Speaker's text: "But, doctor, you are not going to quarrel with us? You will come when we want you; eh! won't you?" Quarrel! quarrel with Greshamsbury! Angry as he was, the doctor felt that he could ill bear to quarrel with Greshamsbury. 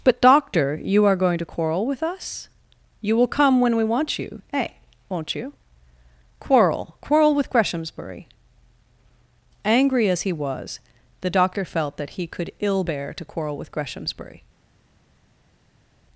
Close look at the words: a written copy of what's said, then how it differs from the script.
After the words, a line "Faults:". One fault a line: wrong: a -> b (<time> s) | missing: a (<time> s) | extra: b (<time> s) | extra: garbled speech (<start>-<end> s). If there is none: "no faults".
"But, doctor, you are going to quarrel with us? You will come when we want you; eh! won't you?" Quarrel! quarrel with Greshamsbury! Angry as he was, the doctor felt that he could ill bear to quarrel with Greshamsbury.
Faults:
missing: not (1.1 s)